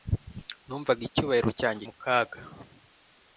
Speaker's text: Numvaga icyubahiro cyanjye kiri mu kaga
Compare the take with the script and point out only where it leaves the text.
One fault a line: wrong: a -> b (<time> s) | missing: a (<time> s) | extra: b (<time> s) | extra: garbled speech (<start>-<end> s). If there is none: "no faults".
missing: kiri (1.8 s)